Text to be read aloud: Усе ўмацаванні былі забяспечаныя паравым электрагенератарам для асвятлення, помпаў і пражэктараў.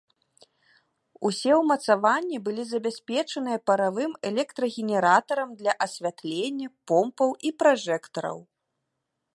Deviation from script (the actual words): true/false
false